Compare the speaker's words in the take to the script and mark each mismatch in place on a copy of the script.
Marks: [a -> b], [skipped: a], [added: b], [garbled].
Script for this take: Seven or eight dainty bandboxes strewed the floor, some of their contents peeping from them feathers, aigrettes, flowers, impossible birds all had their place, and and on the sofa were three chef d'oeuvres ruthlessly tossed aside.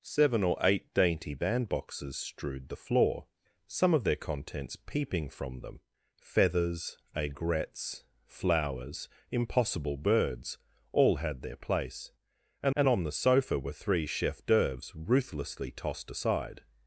Seven or eight dainty bandboxes strewed the floor, some of their contents peeping from them feathers, aigrettes, flowers, impossible birds all had their place, and and on the sofa were three chef d'oeuvres ruthlessly tossed aside.